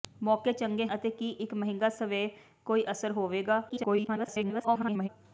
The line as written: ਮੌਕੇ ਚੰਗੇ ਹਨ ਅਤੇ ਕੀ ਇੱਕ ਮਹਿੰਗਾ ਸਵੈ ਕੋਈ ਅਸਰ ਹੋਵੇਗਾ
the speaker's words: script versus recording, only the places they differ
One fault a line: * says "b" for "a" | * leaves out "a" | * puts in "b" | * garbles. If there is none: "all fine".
* leaves out "ਹਨ"
* garbles